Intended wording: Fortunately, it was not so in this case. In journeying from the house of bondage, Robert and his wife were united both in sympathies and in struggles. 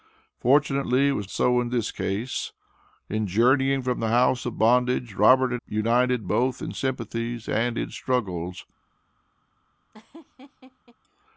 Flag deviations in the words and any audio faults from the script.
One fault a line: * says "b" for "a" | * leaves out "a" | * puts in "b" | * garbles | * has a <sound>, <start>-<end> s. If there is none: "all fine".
* leaves out "not"
* leaves out "his wife were"
* has a laugh, 9.9-11.0 s